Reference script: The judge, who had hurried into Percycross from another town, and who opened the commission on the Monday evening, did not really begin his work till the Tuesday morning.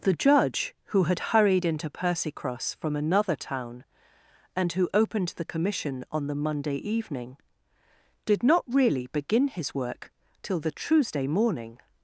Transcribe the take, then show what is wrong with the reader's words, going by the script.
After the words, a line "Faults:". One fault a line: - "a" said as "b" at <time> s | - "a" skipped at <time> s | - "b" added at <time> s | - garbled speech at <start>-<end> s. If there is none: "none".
The judge, who had hurried into Percycross from another town, and who opened the commission on the Monday evening, did not really begin his work till the Tuesday morning.
Faults:
none